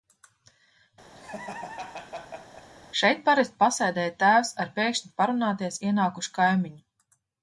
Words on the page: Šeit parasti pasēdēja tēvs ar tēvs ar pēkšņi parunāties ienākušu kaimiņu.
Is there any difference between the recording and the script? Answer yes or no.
yes